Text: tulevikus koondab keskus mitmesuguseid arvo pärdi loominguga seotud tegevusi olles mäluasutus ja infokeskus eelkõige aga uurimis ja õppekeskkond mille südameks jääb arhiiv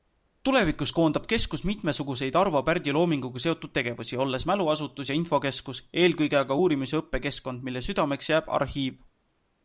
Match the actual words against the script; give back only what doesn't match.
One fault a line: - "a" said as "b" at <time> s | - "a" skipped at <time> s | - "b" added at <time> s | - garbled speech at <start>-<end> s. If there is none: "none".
none